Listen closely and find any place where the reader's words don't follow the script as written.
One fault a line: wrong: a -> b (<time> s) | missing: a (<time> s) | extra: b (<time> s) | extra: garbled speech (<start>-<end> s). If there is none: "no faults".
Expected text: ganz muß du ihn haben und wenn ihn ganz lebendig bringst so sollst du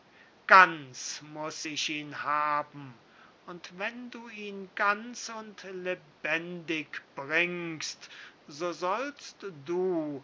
wrong: du -> ich (1.6 s)
extra: du (4.1 s)
extra: und (5.3 s)